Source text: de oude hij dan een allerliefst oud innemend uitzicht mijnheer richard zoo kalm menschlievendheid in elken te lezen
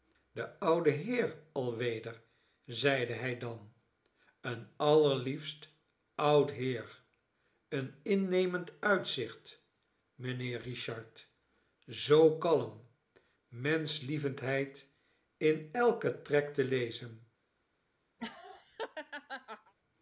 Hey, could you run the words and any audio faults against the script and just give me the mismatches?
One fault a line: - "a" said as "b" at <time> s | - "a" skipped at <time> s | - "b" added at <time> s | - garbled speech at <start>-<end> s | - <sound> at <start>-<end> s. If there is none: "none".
- "heer alweder zeide" added at 0.9 s
- "heer een" added at 6.5 s
- "trek" added at 16.2 s
- laugh at 18.2-19.7 s